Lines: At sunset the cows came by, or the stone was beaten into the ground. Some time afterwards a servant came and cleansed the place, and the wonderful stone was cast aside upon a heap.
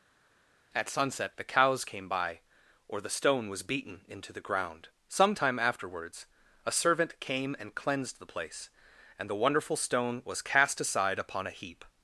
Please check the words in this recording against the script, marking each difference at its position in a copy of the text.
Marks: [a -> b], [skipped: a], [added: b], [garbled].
At sunset the cows came by, or the stone was beaten into the ground. Some time afterwards a servant came and cleansed the place, and the wonderful stone was cast aside upon a heap.